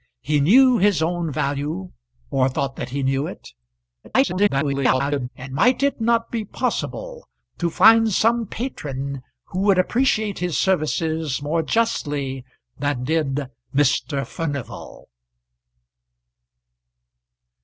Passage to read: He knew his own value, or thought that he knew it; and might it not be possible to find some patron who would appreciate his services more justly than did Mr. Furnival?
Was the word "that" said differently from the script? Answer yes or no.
no